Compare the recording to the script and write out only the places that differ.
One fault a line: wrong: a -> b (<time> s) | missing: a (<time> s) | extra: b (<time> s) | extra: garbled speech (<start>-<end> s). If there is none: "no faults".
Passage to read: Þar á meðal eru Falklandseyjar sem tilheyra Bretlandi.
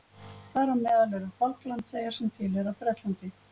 no faults